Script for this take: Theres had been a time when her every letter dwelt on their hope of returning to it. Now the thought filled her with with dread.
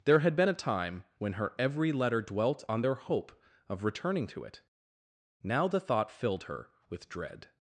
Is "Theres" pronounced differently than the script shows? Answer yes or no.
yes